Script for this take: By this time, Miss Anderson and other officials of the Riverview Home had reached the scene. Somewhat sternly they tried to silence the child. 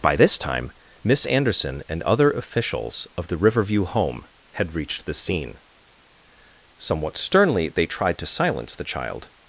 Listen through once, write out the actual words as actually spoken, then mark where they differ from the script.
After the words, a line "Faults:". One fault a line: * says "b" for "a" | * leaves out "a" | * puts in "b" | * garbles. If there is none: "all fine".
By this time, Miss Anderson and other officials of the Riverview Home had reached the scene. Somewhat sternly they tried to silence the child.
Faults:
all fine